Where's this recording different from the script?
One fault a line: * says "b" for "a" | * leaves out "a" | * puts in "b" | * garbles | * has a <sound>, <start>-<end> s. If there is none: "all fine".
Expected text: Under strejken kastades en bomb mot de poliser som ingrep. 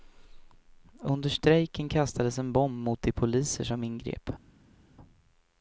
all fine